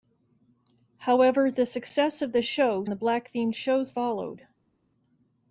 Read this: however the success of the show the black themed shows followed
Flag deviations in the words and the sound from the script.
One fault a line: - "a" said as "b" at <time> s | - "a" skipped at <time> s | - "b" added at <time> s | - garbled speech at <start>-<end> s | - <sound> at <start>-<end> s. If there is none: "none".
none